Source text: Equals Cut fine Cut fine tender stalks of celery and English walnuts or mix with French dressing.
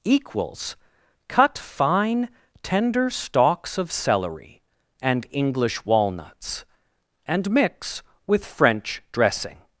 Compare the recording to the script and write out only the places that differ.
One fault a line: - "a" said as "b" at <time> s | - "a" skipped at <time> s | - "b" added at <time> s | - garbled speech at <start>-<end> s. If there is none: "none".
- "Cut fine" skipped at 2.3 s
- "or" said as "and" at 7.3 s